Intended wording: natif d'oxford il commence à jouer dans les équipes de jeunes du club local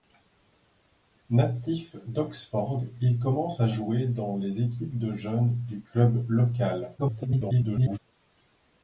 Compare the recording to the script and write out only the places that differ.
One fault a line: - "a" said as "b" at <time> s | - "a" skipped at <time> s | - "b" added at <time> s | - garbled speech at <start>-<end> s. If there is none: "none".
- garbled speech at 7.0-8.0 s